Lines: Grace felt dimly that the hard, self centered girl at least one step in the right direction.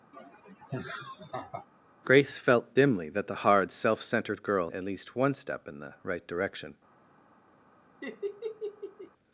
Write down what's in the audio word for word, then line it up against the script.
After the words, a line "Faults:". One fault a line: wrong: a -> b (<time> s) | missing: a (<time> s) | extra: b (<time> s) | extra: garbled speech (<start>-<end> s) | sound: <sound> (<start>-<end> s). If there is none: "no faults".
Grace felt dimly that the hard, self centered girl at least one step in the right direction.
Faults:
sound: laugh (0.1-1.7 s)
sound: laugh (8.0-9.1 s)